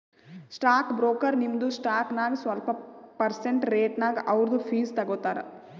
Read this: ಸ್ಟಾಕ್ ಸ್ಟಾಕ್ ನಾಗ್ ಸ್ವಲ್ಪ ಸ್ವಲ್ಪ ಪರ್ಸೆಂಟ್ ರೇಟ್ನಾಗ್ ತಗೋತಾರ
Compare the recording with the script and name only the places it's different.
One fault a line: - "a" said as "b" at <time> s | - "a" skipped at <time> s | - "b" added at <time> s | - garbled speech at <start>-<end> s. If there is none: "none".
- "ಬ್ರೋಕರ್ ನಿಮ್ದು" added at 0.9 s
- "ಸ್ವಲ್ಪ" skipped at 2.7 s
- "ಅವ್ರದು ಫೀಸ್" added at 4.3 s